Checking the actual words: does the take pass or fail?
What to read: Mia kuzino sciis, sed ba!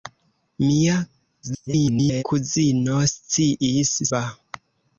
fail